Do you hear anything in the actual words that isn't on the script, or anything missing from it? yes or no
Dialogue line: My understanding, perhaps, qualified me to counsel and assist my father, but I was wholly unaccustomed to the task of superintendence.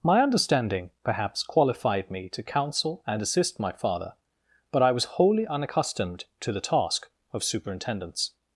no